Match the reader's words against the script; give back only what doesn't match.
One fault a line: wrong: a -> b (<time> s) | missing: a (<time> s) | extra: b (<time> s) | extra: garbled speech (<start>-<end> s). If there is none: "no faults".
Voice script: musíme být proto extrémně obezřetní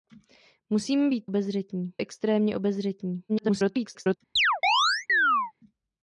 wrong: proto -> obezřetní (1.3 s)
extra: garbled speech (3.3-4.2 s)